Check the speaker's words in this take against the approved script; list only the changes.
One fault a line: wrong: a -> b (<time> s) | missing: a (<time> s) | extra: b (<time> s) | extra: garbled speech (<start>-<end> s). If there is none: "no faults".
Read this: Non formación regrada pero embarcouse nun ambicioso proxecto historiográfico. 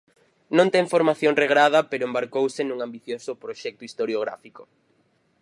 extra: ten (0.7 s)